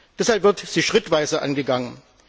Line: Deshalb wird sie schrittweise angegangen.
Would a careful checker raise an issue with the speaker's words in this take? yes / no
no